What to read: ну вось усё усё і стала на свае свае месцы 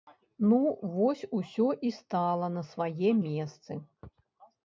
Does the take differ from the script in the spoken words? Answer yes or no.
yes